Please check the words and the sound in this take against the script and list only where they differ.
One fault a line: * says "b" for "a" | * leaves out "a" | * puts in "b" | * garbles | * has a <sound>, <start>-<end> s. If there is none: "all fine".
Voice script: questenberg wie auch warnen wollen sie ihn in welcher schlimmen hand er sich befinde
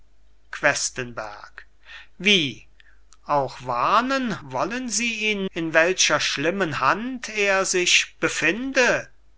all fine